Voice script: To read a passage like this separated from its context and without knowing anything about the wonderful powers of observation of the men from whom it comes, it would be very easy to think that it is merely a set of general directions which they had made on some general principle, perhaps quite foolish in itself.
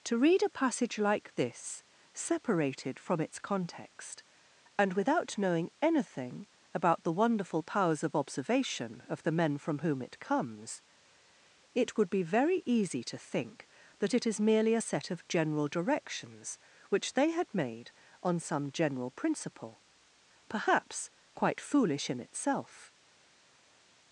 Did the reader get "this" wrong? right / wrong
right